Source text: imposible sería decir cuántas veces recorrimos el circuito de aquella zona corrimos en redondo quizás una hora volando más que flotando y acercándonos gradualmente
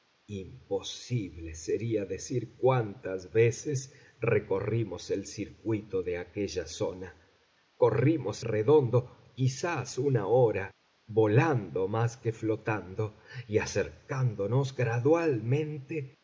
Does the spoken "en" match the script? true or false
false